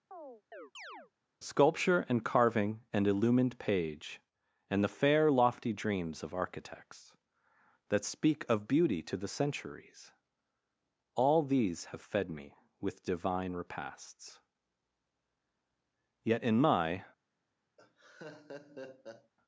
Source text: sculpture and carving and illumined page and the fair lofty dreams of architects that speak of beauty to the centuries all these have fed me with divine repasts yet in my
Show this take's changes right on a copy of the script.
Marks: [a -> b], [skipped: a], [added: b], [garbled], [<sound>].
[chirp] sculpture and carving and illumined page and the fair lofty dreams of architects that speak of beauty to the centuries all these have fed me with divine repasts yet in my [laugh]